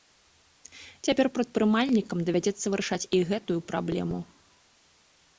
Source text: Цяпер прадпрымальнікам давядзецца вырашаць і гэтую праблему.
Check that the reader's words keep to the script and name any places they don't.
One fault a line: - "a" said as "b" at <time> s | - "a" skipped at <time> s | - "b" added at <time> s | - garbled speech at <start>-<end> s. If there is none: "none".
none